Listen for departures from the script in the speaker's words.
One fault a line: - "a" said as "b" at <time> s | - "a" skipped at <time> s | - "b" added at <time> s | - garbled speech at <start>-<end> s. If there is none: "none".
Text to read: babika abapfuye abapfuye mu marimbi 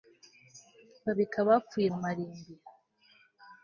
- "abapfuye" skipped at 1.9 s